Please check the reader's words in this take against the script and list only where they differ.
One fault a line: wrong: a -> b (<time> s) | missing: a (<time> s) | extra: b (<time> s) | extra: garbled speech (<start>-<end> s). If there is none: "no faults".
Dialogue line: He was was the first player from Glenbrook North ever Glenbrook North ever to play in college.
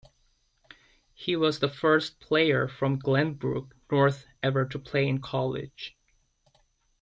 missing: was (1.6 s)
missing: Glenbrook North ever (4.7 s)